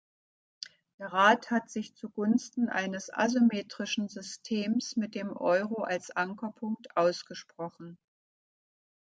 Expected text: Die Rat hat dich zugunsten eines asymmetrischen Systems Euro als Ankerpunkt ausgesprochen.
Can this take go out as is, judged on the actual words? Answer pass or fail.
fail